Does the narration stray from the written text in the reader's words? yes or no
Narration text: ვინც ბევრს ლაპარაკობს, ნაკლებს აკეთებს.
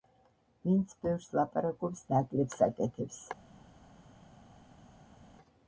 no